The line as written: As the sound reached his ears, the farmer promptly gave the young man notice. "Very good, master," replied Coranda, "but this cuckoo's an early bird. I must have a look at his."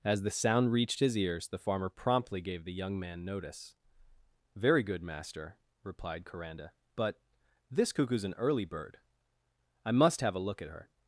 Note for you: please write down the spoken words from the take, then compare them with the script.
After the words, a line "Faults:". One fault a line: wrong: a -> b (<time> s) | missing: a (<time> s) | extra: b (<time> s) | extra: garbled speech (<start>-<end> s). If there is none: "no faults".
As the sound reached his ears, the farmer promptly gave the young man notice. "Very good, master," replied Coranda, "but this cuckoo's an early bird. I must have a look at her."
Faults:
wrong: his -> her (10.7 s)